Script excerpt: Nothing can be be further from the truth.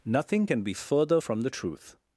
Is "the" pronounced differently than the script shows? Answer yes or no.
no